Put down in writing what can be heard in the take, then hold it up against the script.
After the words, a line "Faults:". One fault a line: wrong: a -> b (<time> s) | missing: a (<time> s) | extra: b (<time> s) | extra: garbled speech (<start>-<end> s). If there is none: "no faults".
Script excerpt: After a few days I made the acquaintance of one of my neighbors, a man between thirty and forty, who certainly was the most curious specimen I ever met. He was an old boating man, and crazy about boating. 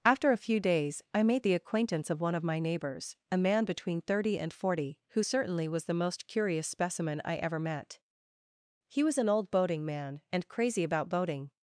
After a few days I made the acquaintance of one of my neighbors, a man between thirty and forty, who certainly was the most curious specimen I ever met. He was an old boating man, and crazy about boating.
Faults:
no faults